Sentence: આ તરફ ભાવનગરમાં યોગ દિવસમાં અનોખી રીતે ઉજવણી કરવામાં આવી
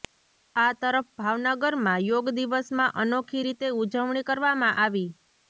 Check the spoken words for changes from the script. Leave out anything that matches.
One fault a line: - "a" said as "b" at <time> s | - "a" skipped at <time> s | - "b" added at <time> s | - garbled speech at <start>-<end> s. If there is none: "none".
none